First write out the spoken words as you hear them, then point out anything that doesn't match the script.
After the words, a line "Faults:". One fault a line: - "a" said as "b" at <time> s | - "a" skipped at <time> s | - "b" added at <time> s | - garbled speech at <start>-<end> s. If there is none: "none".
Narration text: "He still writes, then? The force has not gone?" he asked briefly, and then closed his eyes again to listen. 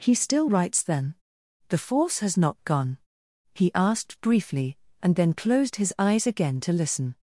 "He still writes, then? The force has not gone?" he asked briefly, and then closed his eyes again to listen.
Faults:
none